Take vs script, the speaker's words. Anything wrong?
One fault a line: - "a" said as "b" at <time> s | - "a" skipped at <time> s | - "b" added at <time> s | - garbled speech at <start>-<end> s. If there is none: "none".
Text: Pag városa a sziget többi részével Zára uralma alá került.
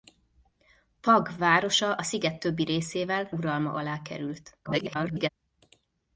- "Zára" skipped at 3.3 s
- garbled speech at 4.6-5.3 s